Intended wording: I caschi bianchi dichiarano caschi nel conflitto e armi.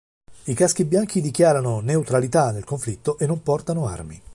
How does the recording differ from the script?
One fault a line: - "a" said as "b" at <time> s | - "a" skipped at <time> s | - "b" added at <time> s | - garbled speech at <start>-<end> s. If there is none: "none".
- "caschi" said as "neutralità" at 1.8 s
- "non portano" added at 3.3 s